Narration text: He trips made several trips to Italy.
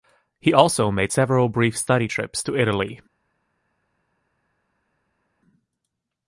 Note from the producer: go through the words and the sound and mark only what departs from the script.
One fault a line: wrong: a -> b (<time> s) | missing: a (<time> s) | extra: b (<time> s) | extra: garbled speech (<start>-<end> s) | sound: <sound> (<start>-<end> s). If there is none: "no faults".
wrong: trips -> also (0.5 s)
extra: brief study (1.5 s)